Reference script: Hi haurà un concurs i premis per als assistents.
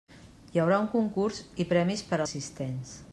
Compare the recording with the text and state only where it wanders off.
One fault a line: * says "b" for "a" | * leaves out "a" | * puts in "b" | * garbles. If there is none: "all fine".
* leaves out "als"